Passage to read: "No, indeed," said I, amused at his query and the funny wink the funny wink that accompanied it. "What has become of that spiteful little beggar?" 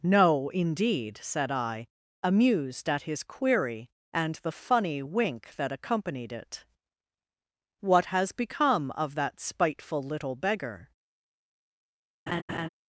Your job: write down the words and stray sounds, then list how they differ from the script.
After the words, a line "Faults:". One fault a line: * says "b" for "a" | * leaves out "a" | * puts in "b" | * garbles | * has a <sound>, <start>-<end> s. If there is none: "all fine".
"No, indeed," said I, amused at his query and the funny wink that accompanied it. "What has become of that spiteful little beggar?"
Faults:
* leaves out "the funny wink"
* has a laugh, 12.3-12.7 s